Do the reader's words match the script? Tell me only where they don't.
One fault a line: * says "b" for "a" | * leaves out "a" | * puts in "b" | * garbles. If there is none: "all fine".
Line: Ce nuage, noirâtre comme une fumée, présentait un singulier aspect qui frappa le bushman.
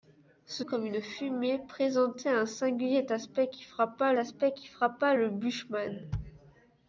* leaves out "nuage noirâtre"
* puts in "aspect qui frappa"